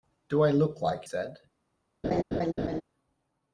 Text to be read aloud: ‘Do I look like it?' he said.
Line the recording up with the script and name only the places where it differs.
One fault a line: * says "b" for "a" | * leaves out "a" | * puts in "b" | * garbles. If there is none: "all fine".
* leaves out "it he"